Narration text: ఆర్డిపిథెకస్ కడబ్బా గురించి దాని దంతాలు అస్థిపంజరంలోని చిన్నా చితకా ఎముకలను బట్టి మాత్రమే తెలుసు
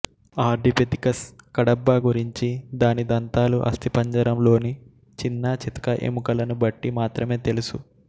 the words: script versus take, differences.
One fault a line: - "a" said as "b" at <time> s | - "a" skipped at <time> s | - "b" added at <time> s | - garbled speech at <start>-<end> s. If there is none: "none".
none